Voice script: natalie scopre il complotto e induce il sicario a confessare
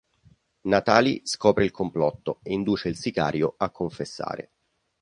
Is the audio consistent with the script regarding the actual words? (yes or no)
yes